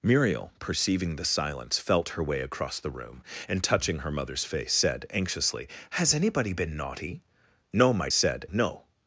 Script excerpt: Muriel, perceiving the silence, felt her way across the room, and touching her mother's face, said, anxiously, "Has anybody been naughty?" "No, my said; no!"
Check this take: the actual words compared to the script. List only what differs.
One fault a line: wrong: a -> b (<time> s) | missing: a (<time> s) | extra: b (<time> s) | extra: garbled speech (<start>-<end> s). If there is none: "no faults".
no faults